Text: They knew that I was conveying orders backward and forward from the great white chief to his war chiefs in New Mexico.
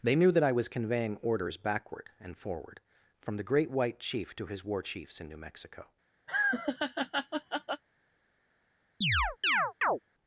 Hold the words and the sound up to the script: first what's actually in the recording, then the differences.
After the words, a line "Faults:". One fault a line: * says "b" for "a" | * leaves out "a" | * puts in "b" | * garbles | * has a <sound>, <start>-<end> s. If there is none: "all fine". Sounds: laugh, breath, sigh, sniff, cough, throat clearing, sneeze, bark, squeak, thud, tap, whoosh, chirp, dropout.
They knew that I was conveying orders backward and forward from the great white chief to his war chiefs in New Mexico.
Faults:
* has a laugh, 6.3-7.8 s
* has a chirp, 9.0-10.0 s